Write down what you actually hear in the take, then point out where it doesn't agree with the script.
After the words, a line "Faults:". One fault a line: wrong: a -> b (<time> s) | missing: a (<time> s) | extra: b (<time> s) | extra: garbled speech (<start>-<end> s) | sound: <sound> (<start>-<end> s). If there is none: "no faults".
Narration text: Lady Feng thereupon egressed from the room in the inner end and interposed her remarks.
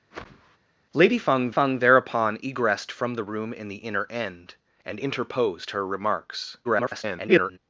Lady Feng Feng thereupon egressed from the room in the inner end and interposed her remarks. [garbled]
Faults:
sound: whoosh (0.1-0.6 s)
extra: Feng (1.5 s)
extra: garbled speech (6.6-7.6 s)